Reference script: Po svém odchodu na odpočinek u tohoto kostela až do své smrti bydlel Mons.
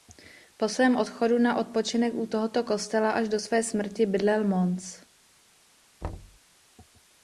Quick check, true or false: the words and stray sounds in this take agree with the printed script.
false